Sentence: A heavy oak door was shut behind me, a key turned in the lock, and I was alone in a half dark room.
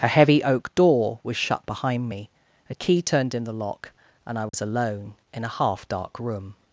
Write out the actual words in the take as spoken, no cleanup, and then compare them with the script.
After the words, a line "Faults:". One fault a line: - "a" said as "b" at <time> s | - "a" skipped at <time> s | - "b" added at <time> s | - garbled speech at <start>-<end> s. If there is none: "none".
A heavy oak door was shut behind me, a key turned in the lock, and I was alone in a half dark room.
Faults:
none